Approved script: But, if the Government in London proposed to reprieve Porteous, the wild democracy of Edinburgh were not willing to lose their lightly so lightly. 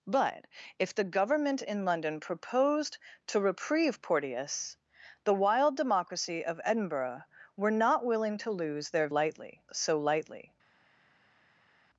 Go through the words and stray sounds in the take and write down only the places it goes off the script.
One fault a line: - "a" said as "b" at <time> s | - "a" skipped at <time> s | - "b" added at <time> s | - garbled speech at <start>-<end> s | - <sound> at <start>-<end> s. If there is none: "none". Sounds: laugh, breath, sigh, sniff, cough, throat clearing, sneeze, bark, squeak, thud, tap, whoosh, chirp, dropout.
none